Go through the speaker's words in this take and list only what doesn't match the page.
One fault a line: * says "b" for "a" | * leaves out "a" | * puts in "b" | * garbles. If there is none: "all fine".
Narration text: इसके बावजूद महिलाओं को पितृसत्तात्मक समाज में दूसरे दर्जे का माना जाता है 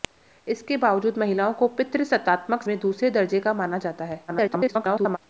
* leaves out "समाज"
* garbles